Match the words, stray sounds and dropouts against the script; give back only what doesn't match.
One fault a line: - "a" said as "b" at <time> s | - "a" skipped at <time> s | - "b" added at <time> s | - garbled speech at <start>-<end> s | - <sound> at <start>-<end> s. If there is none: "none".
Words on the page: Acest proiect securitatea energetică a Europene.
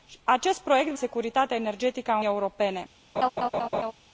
- laugh at 3.2-3.9 s